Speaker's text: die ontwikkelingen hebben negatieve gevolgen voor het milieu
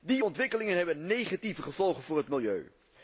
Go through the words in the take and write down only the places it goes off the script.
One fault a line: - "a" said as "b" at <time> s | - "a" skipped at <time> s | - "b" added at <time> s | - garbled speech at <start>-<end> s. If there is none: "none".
none